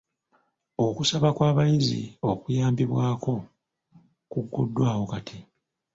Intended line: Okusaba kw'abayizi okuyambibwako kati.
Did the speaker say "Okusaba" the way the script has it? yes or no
yes